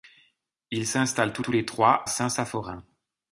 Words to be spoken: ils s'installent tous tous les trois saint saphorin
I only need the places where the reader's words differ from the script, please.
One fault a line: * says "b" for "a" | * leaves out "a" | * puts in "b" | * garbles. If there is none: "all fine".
all fine